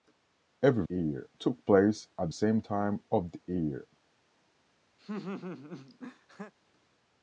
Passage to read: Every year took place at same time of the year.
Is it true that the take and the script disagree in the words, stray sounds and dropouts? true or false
true